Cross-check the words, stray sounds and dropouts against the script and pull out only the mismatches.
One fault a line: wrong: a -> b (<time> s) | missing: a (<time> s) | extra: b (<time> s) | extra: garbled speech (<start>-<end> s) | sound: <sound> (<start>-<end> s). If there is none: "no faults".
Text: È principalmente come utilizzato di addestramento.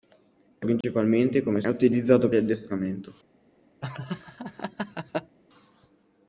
sound: dropout (0.8-0.8 s)
sound: laugh (3.8-5.4 s)